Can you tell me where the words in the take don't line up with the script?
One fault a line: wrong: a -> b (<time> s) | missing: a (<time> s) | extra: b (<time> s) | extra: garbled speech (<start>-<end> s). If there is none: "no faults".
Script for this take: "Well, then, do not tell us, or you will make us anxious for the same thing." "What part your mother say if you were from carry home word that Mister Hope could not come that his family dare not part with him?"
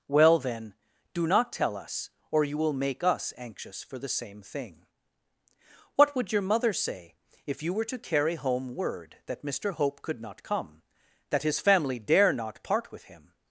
wrong: part -> would (6.2 s)
wrong: from -> to (7.8 s)